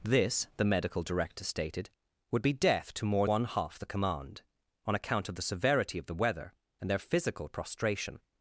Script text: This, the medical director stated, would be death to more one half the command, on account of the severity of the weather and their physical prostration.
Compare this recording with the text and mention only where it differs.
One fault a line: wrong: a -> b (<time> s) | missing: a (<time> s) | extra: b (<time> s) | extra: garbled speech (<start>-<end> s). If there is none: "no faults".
no faults